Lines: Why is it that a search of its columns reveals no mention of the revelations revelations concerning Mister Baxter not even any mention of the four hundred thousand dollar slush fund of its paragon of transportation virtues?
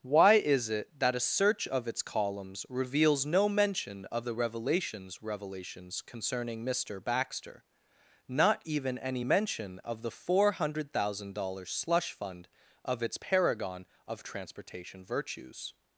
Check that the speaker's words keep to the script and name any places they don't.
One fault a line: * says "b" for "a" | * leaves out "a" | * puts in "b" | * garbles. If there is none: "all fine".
all fine